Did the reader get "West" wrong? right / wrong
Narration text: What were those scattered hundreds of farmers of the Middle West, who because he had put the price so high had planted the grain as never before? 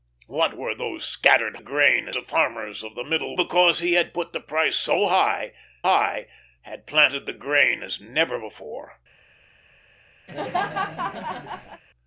wrong